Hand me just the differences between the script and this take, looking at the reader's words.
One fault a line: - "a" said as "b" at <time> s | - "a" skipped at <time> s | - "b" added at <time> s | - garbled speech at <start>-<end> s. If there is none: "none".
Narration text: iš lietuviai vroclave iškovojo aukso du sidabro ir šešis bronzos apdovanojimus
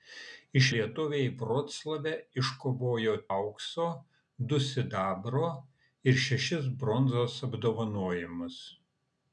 none